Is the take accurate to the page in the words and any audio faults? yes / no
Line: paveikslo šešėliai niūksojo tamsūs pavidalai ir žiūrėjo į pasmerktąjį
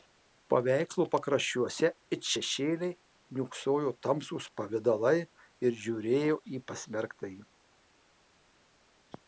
no